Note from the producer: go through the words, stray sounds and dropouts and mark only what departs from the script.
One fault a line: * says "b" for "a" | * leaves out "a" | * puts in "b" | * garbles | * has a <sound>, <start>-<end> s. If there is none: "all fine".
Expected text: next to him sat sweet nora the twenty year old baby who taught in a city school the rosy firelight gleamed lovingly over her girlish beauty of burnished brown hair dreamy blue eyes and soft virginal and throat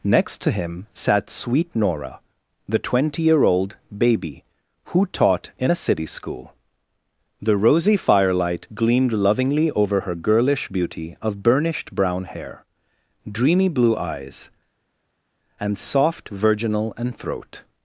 all fine